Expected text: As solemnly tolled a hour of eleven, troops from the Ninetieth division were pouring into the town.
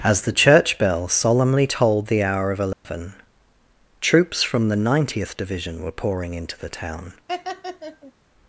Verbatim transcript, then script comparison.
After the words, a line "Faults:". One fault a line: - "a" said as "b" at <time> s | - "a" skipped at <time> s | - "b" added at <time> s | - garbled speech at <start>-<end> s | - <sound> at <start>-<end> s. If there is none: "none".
As the church bell solemnly tolled the hour of eleven, troops from the Ninetieth division were pouring into the town.
Faults:
- "the church bell" added at 0.2 s
- "a" said as "the" at 2.1 s
- dropout at 2.7-2.8 s
- laugh at 7.3-8.1 s